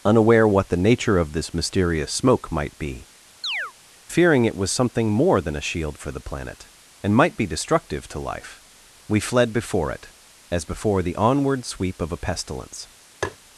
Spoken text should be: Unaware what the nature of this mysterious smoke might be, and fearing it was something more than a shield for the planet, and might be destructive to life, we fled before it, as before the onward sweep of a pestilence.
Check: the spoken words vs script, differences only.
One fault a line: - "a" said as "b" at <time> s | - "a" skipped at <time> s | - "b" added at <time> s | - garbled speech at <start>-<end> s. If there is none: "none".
- "and" skipped at 3.1 s